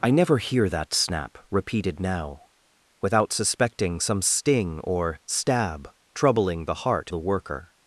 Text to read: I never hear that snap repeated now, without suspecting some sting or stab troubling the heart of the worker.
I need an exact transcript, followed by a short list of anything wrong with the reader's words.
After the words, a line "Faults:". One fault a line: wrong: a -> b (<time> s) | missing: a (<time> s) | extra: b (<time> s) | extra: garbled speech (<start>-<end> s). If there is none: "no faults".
I never hear that snap repeated now, without suspecting some sting or stab troubling the heart the worker.
Faults:
missing: of (7.1 s)